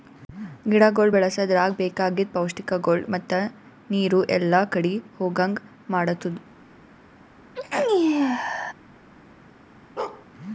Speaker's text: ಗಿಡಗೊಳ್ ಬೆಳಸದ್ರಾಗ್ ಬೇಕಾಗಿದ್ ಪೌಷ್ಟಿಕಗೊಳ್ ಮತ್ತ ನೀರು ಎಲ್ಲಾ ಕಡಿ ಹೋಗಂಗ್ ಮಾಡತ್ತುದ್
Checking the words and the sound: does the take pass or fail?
fail